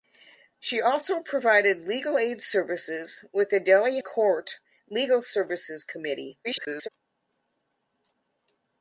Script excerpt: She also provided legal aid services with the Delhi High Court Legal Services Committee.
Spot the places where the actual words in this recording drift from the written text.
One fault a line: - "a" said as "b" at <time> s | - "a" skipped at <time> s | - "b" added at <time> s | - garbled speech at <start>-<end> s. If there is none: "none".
- "High" skipped at 4.0 s
- garbled speech at 6.4-6.9 s